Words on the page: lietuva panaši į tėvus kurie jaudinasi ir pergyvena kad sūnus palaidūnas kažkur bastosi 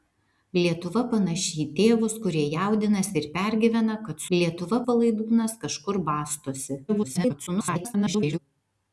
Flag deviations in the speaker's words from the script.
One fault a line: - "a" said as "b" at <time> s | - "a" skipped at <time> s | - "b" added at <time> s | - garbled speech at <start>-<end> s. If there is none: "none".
- "sūnus" said as "lietuva" at 4.3 s
- garbled speech at 6.9-8.4 s